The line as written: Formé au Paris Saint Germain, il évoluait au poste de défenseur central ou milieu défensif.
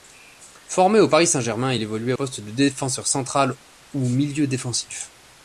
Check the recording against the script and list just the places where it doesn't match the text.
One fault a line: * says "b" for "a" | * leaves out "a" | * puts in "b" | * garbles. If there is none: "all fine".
* leaves out "au"